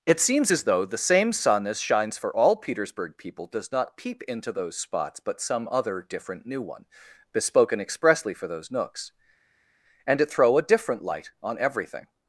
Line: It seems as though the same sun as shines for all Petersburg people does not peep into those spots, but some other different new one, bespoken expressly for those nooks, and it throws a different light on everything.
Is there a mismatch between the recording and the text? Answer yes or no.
yes